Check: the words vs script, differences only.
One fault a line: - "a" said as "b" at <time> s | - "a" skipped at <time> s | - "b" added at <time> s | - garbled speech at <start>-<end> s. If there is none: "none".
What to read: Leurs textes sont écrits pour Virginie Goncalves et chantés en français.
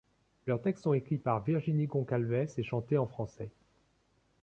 - "pour" said as "par" at 1.2 s